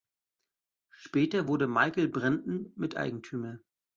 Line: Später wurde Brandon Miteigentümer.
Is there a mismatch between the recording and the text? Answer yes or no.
yes